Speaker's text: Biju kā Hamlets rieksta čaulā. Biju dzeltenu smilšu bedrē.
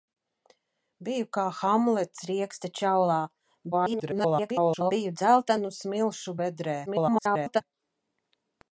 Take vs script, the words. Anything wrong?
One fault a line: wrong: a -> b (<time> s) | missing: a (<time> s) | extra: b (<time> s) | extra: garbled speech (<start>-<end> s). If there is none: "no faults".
extra: garbled speech (3.7-4.9 s)
extra: garbled speech (6.9-7.6 s)